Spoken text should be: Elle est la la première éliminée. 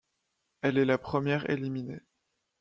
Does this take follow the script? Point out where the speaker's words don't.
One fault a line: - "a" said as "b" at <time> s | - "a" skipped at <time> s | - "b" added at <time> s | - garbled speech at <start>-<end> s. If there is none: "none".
- "la" skipped at 1.0 s